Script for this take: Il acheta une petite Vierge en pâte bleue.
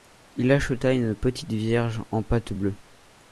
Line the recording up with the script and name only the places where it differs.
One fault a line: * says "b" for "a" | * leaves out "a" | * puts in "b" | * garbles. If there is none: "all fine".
all fine